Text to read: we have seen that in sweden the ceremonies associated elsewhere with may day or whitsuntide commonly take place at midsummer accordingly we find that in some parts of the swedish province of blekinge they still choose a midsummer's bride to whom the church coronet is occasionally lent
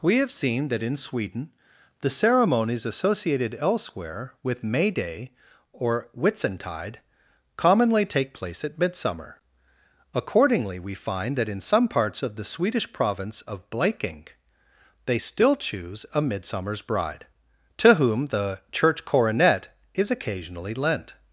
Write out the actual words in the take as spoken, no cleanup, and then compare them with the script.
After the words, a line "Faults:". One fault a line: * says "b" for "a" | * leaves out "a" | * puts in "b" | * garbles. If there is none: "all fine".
we have seen that in sweden the ceremonies associated elsewhere with may day or whitsuntide commonly take place at midsummer accordingly we find that in some parts of the swedish province of blekinge they still choose a midsummer's bride to whom the church coronet is occasionally lent
Faults:
all fine